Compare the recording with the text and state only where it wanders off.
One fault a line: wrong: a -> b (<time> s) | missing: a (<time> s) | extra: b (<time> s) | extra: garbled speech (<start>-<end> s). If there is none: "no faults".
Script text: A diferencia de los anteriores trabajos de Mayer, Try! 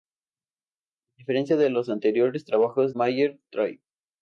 missing: de (3.0 s)